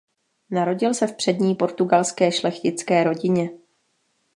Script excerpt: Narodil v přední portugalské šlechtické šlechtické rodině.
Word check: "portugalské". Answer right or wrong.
right